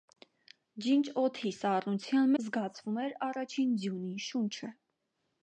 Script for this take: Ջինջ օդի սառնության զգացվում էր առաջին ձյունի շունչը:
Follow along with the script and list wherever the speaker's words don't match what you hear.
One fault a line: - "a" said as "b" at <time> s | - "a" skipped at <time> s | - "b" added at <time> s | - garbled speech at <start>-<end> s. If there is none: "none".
none